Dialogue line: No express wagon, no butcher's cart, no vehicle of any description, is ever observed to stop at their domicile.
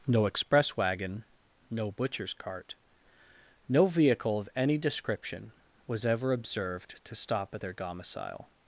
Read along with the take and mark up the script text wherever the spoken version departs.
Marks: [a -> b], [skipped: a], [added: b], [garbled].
No express wagon, no butcher's cart, no vehicle of any description, [is -> was] ever observed to stop at their domicile.